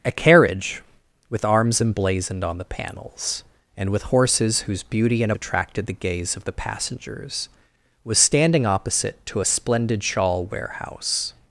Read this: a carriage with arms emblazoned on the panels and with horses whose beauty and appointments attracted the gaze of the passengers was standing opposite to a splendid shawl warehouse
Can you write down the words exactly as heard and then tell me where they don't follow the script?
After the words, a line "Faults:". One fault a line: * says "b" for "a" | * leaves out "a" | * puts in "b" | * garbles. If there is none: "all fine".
a carriage with arms emblazoned on the panels and with horses whose beauty and attracted the gaze of the passengers was standing opposite to a splendid shawl warehouse
Faults:
* leaves out "appointments"